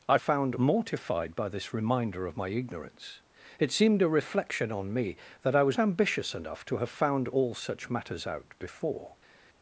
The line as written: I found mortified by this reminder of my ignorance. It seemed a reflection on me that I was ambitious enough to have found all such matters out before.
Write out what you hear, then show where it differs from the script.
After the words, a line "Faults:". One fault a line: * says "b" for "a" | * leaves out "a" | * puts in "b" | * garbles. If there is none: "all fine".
I found mortified by this reminder of my ignorance. It seemed a reflection on me that I was ambitious enough to have found all such matters out before.
Faults:
all fine